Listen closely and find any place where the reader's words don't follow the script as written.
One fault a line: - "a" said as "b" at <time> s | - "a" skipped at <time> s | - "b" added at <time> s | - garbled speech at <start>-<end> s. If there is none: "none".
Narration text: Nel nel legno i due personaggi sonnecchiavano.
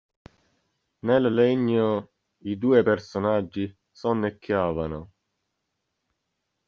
- "nel" skipped at 1.4 s